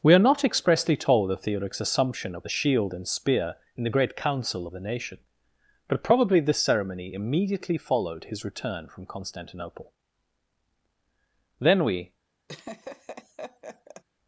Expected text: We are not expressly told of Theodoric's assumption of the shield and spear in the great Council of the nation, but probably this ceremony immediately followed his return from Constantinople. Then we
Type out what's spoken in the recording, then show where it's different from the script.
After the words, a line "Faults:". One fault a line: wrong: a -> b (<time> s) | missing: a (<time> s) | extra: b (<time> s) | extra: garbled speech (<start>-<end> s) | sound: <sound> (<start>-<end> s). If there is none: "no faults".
We are not expressly told of Theodoric's assumption of the shield and spear in the great Council of the nation, but probably this ceremony immediately followed his return from Constantinople. Then we
Faults:
sound: laugh (12.5-14.0 s)